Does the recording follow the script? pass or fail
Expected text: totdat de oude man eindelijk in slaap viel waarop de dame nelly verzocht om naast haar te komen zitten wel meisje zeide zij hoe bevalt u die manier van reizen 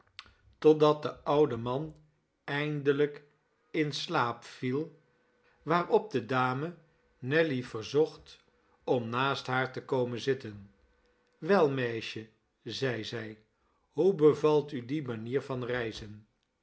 pass